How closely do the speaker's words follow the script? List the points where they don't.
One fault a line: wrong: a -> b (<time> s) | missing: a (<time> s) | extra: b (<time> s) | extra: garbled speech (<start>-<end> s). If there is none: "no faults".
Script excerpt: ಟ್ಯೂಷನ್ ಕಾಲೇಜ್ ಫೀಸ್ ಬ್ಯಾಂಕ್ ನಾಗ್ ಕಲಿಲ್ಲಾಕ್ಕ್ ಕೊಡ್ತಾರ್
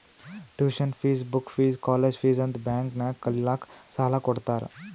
extra: ಫೀಸ್ ಬುಕ್ ಫೀಸ್ (0.9 s)
extra: ಅಂತ್ (2.4 s)
extra: ಸಾಲಾ (4.0 s)